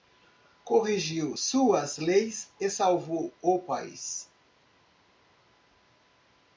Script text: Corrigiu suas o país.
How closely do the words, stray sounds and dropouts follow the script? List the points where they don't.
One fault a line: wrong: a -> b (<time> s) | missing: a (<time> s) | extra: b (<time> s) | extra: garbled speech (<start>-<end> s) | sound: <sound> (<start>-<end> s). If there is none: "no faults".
extra: leis e salvou (2.0 s)